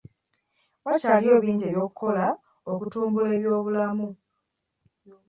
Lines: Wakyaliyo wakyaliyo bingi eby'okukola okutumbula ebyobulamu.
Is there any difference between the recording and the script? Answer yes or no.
yes